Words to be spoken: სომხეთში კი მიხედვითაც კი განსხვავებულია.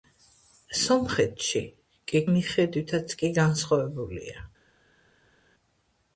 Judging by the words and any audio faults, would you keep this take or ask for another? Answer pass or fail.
pass